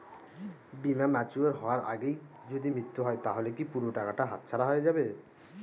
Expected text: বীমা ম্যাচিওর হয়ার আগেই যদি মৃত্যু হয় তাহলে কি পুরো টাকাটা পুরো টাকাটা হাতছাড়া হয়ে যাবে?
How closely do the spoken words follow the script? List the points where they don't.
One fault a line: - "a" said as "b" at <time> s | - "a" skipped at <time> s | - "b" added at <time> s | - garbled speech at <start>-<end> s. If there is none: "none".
- "পুরো টাকাটা" skipped at 4.2 s